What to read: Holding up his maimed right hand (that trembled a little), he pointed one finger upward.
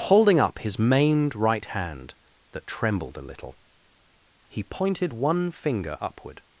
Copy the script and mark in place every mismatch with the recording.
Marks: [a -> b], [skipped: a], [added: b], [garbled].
Holding up his maimed right hand (that trembled a little), he pointed one finger upward.